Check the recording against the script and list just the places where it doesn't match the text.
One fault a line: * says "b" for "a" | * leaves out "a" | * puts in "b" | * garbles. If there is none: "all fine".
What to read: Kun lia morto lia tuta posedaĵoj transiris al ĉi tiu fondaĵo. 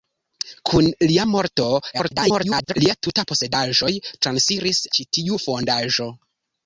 * garbles
* leaves out "al"